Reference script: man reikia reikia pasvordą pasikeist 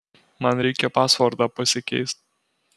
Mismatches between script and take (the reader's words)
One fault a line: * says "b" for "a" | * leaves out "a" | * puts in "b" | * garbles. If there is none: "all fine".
* leaves out "reikia"